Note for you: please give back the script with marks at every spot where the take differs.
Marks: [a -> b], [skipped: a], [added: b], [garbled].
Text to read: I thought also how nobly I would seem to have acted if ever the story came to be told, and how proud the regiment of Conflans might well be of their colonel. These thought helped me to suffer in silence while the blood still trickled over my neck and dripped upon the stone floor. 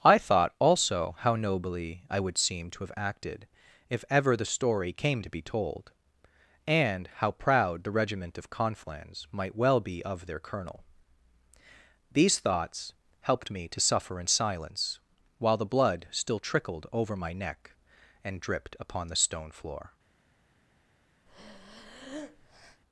I thought also how nobly I would seem to have acted if ever the story came to be told, and how proud the regiment of Conflans might well be of their colonel. These [thought -> thoughts] helped me to suffer in silence while the blood still trickled over my neck and dripped upon the stone floor.